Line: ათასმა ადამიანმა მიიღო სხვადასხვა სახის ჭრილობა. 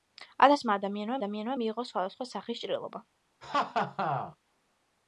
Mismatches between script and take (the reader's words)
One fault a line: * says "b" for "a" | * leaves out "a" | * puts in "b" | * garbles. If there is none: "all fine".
* puts in "ადამიანმა"